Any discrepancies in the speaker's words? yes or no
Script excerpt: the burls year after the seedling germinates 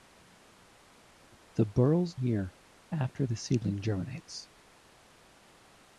no